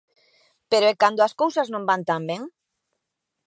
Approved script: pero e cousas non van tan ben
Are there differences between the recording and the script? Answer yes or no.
yes